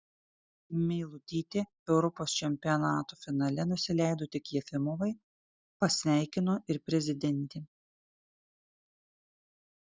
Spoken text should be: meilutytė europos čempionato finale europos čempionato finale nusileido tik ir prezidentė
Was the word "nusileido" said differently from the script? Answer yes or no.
yes